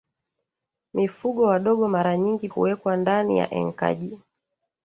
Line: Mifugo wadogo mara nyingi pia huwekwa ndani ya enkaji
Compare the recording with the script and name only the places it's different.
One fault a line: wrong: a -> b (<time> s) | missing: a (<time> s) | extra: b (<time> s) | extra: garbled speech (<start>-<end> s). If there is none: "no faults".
missing: pia (2.5 s)